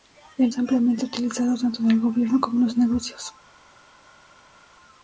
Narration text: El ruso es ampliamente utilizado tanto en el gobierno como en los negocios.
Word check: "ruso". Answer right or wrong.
wrong